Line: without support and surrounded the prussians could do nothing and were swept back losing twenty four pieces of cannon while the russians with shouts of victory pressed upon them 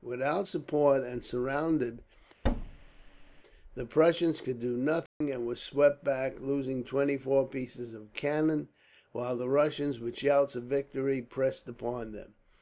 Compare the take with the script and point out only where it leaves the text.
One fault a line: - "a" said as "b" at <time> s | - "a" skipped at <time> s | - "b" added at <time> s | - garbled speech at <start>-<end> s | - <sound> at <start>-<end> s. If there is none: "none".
- thud at 2.4-3.4 s
- dropout at 5.1-5.2 s